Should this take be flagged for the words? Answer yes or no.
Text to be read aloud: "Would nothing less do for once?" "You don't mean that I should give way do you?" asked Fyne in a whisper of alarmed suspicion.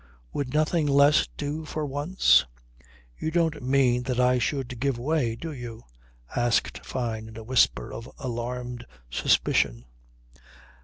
no